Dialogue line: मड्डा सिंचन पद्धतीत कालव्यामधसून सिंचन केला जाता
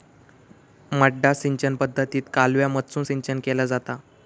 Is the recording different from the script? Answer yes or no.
no